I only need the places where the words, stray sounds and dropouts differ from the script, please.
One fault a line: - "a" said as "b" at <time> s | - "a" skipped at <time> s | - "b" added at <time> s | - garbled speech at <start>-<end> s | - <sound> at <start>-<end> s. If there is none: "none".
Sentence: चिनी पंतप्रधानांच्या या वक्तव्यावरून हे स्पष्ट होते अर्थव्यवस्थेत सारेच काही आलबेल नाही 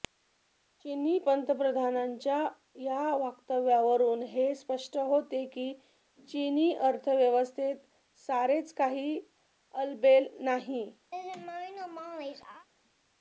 - "की चिनी" added at 5.5 s
- laugh at 11.1-12.7 s